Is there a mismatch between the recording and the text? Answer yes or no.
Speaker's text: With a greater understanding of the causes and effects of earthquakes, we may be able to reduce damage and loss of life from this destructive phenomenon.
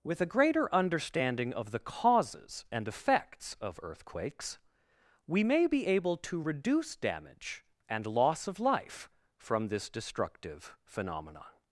no